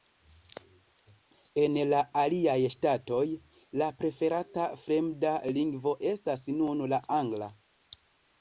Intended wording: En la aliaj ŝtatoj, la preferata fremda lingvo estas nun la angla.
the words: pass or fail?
pass